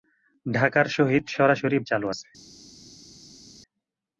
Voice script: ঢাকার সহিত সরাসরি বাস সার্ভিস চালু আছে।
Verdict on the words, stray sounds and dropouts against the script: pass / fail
fail